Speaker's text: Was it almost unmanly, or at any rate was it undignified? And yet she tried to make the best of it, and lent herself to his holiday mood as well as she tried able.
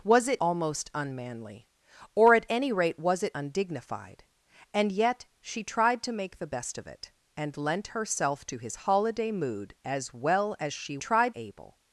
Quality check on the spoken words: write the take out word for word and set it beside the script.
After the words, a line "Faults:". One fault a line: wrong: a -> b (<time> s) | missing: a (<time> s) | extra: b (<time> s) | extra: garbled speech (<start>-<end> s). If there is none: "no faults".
Was it almost unmanly, or at any rate was it undignified? And yet she tried to make the best of it, and lent herself to his holiday mood as well as she tried able.
Faults:
no faults